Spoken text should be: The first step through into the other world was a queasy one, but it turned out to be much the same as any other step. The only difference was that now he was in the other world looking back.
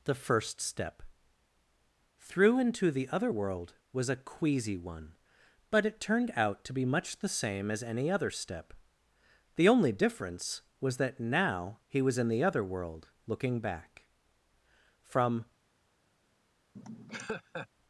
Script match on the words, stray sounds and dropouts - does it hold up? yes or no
no